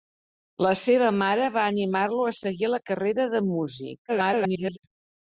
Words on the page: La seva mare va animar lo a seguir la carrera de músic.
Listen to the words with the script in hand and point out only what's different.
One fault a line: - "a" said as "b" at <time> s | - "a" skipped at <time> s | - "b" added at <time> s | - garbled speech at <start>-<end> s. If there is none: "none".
- garbled speech at 4.1-4.8 s